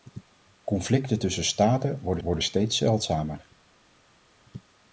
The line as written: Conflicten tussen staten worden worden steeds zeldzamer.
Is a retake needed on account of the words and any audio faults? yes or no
no